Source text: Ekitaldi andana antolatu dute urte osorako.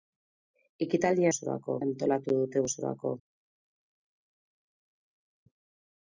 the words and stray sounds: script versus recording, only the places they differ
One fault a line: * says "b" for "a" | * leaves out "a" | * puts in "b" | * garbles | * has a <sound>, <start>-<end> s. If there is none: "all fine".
* says "osorako" for "andana"
* leaves out "urte"